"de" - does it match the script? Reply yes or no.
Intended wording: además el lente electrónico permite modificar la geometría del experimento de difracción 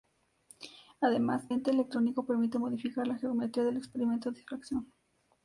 no